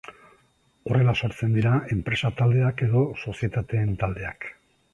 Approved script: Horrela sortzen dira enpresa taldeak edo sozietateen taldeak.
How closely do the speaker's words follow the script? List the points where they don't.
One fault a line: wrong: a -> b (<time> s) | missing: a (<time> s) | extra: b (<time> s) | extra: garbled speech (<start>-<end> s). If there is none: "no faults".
no faults